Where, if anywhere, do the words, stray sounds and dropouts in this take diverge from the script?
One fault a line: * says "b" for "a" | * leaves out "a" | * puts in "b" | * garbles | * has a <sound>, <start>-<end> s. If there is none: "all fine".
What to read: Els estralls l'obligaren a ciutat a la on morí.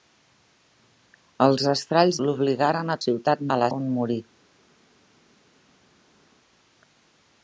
all fine